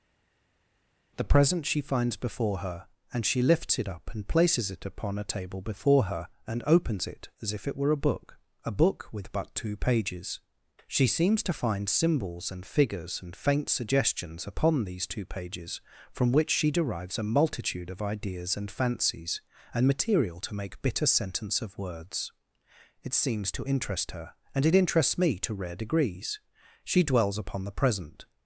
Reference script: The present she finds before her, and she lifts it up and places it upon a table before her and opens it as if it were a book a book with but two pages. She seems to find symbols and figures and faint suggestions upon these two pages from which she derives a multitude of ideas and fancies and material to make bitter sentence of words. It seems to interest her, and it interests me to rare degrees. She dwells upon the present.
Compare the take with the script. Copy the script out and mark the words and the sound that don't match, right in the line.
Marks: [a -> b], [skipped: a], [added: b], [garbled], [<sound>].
The present she finds before her, and she lifts it up and places it upon a table before her and opens it as if it were a book a book with but two pages. She seems to find symbols and figures and faint suggestions upon these two pages from which she derives a multitude of ideas and fancies and material to make bitter sentence of words. It seems to interest her, and it interests me to rare degrees. She dwells upon the present.